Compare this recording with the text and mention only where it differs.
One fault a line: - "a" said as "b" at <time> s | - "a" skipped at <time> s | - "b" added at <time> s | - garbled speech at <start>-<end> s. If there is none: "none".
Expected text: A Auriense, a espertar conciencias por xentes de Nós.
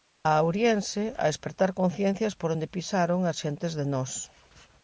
- "onde pisaron as" added at 2.5 s